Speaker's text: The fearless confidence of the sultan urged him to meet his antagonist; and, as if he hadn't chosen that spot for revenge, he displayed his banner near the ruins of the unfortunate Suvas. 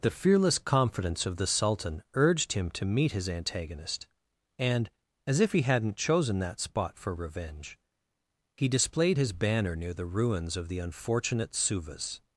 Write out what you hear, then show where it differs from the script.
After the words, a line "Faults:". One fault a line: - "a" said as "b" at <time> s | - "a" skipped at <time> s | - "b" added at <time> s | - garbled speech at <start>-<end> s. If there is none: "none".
The fearless confidence of the sultan urged him to meet his antagonist; and, as if he hadn't chosen that spot for revenge, he displayed his banner near the ruins of the unfortunate Suvas.
Faults:
none